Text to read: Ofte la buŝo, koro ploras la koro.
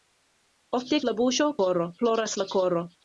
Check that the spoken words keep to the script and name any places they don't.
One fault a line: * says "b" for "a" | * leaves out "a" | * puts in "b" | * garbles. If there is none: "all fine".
all fine